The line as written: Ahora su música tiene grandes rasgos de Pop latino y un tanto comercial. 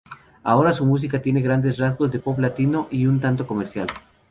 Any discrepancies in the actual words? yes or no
no